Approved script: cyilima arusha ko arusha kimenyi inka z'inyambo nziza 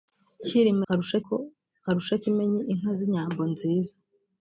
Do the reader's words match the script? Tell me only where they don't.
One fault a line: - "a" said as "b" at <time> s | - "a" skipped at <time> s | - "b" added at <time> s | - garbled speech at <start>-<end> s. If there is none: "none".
none